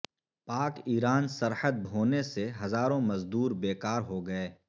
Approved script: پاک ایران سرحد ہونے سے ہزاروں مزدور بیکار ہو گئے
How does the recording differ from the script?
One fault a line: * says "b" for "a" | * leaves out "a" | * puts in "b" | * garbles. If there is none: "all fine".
all fine